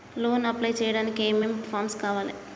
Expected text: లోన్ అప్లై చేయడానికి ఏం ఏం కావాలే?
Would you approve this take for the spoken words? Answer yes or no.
no